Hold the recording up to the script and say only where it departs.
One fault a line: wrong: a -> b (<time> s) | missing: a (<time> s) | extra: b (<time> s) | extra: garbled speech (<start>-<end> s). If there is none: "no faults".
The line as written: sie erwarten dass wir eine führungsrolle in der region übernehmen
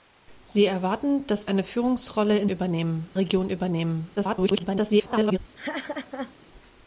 missing: wir (1.4 s)
wrong: der -> übernehmen (2.5 s)
extra: garbled speech (4.2-5.4 s)